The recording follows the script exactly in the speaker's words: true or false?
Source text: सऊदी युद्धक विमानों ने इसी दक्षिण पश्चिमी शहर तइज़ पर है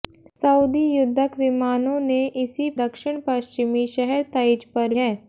true